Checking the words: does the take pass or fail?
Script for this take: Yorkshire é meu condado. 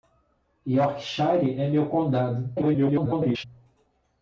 fail